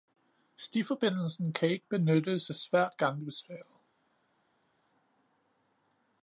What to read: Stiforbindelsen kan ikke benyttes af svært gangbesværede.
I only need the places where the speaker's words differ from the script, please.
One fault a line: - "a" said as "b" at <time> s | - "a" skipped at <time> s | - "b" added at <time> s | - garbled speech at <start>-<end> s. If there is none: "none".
none